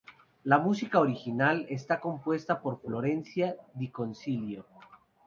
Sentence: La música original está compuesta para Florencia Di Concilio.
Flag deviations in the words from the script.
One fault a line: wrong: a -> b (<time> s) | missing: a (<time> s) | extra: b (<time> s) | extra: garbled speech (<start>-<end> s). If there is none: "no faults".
wrong: para -> por (2.6 s)